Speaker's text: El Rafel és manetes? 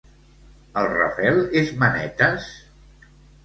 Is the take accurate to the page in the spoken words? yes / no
yes